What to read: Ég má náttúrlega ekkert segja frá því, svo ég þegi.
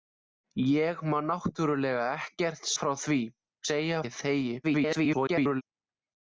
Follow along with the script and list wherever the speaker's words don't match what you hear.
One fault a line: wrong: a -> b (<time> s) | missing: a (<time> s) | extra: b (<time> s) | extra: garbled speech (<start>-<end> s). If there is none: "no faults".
missing: segja (2.6 s)
wrong: svo -> segja (3.7 s)
extra: garbled speech (4.6-5.6 s)